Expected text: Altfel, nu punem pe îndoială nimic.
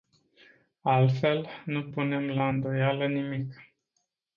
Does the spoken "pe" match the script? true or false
false